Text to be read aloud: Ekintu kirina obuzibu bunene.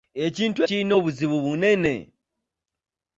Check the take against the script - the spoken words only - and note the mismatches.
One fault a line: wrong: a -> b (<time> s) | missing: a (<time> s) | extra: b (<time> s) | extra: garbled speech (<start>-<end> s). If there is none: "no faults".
no faults